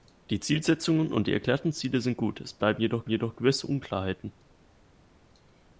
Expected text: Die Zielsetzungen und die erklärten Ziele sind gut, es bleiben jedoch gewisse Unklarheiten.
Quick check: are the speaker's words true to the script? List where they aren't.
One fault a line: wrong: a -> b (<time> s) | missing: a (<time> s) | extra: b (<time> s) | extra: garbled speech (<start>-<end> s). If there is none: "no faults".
extra: jedoch (3.1 s)